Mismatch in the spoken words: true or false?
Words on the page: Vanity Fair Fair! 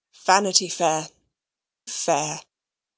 false